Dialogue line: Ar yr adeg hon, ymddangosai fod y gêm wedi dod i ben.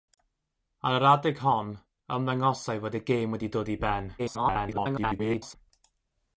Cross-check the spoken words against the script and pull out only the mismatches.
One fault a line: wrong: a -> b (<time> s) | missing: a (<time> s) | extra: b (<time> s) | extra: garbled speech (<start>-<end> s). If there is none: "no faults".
extra: garbled speech (4.2-5.6 s)